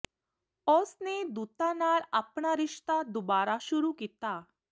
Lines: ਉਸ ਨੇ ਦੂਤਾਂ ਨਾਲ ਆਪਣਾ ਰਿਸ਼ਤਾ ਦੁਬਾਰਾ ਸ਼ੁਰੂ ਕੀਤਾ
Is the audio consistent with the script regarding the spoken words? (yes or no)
yes